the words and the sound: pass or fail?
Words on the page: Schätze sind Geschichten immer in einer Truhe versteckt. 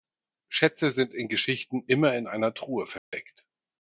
fail